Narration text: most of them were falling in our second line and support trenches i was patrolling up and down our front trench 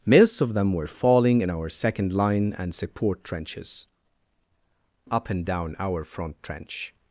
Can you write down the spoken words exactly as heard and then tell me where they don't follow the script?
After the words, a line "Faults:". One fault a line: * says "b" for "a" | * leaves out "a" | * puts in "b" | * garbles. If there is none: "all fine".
most of them were falling in our second line and support trenches up and down our front trench
Faults:
* leaves out "i was patrolling"